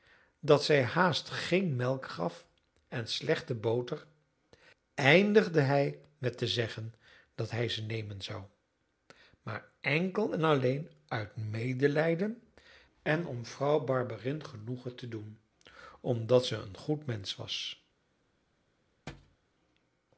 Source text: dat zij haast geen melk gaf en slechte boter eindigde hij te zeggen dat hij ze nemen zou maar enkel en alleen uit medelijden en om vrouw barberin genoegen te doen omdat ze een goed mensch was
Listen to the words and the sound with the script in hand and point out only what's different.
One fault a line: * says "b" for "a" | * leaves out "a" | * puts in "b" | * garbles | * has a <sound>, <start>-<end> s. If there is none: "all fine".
* puts in "met"
* has a thud, 19.1-19.4 s